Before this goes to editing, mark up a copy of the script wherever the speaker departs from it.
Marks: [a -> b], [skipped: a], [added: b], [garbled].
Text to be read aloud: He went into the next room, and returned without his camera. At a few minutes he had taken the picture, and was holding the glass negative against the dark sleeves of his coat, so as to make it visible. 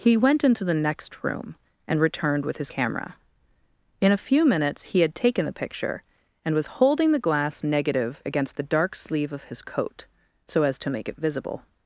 He went into the next room, and returned [without -> with] his camera. [At -> In] a few minutes he had taken the picture, and was holding the glass negative against the dark [sleeves -> sleeve] of his coat, so as to make it visible.